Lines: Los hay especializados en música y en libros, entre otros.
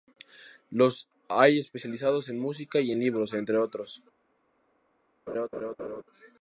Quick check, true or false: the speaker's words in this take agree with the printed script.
true